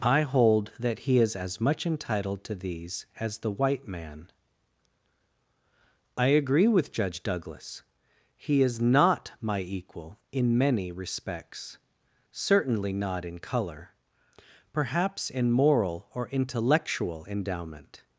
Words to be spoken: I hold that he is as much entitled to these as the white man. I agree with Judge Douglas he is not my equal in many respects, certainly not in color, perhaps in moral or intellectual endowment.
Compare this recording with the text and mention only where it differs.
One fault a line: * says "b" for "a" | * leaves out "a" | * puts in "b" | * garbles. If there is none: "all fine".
all fine